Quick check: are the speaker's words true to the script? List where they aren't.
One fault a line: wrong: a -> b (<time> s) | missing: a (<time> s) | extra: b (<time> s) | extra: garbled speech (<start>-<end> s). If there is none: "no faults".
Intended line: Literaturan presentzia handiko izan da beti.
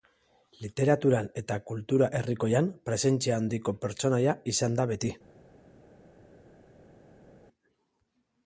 extra: eta kultura herrikoian (1.4 s)
extra: pertsonaia (3.9 s)